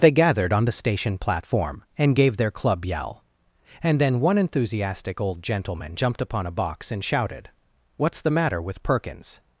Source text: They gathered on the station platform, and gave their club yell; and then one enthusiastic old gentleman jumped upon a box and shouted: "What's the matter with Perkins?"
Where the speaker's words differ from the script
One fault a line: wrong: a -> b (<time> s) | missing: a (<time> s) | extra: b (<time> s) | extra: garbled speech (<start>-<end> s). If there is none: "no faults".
no faults